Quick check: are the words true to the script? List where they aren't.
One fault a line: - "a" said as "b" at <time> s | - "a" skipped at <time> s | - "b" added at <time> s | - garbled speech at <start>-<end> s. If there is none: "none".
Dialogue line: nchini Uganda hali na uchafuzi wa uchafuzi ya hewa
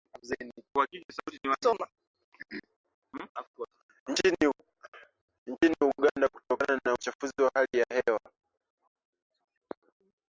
- "hali" said as "kutokana" at 6.3 s
- "uchafuzi" said as "hali" at 7.5 s